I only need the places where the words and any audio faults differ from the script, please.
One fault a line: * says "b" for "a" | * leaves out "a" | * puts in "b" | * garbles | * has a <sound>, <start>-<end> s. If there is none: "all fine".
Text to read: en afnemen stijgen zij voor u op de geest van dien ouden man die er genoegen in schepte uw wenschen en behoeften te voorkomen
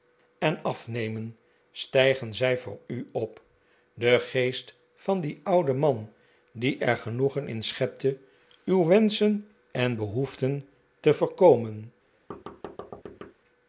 * has a thud, 12.3-13.3 s